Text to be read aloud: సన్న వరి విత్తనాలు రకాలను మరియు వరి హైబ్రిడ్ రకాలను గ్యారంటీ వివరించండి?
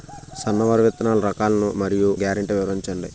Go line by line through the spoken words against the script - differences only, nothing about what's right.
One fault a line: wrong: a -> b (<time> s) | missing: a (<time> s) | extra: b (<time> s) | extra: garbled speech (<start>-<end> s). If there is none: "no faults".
missing: వరి హైబ్రిడ్ రకాలను (2.1 s)